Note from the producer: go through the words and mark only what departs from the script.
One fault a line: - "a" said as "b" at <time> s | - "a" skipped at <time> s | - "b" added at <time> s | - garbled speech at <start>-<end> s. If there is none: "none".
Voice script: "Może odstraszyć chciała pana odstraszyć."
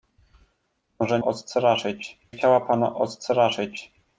none